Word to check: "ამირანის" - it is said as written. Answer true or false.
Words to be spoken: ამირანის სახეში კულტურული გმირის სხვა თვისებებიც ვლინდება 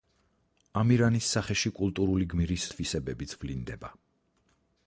true